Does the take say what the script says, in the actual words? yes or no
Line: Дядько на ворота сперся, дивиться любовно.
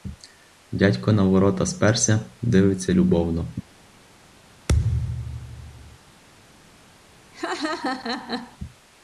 yes